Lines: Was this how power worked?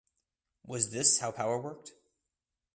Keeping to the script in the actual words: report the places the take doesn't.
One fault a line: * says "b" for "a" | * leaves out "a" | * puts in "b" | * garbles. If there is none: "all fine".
all fine